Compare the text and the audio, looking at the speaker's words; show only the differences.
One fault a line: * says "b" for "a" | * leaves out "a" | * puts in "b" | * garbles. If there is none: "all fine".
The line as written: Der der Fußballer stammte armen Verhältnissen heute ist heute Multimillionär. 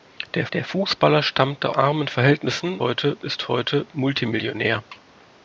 all fine